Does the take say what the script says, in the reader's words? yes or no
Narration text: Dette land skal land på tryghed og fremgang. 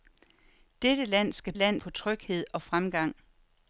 yes